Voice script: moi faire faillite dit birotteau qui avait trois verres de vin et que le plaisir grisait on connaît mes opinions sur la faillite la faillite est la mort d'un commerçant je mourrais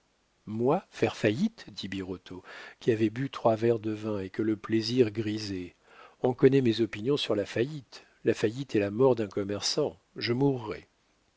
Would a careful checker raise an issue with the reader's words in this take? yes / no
yes